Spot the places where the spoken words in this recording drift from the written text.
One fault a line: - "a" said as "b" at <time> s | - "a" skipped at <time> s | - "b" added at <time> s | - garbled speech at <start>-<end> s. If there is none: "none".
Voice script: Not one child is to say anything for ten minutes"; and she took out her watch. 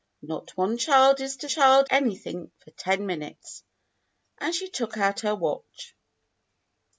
- "say" said as "child" at 1.5 s